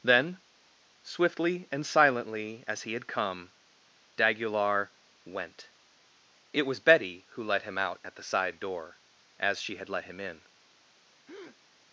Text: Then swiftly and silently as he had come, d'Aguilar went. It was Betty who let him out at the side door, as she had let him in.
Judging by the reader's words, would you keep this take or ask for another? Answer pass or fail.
pass